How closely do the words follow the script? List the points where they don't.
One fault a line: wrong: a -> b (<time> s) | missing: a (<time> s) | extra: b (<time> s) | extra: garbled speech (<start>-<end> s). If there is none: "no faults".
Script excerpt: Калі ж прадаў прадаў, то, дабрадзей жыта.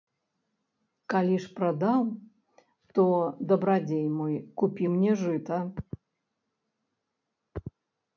missing: прадаў (2.0 s)
extra: мой купі мне (4.2 s)